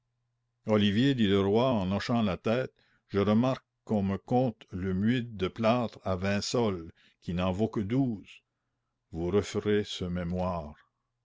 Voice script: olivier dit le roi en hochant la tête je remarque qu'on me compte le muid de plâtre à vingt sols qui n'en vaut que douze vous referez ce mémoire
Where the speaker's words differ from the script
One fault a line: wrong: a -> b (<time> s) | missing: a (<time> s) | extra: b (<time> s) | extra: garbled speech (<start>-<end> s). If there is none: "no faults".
no faults